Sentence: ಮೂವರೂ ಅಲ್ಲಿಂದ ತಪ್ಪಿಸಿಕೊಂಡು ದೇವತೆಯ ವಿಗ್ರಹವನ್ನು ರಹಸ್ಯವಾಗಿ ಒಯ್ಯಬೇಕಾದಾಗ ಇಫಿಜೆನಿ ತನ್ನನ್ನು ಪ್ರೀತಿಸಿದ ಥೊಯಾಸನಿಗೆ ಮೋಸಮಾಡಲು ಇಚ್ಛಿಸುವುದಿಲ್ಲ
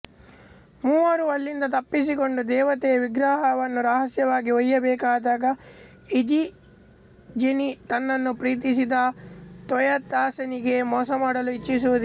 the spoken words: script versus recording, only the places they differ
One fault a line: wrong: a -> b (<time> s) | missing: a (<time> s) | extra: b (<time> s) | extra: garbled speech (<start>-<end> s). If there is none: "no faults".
no faults